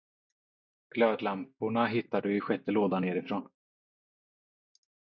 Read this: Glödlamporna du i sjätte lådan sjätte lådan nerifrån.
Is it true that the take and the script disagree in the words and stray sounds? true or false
true